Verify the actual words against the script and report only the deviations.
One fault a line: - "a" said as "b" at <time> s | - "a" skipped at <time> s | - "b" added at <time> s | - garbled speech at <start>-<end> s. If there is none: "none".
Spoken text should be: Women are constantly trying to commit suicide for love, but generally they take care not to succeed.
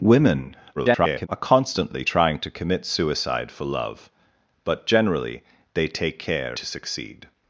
- garbled speech at 0.8-1.3 s
- "not" skipped at 6.6 s